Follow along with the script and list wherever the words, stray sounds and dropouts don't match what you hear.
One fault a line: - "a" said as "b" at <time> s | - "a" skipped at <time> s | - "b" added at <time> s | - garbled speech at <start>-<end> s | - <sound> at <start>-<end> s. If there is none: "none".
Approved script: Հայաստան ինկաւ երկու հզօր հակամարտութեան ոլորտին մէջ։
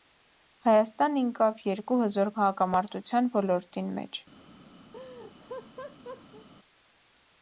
- laugh at 4.9-6.5 s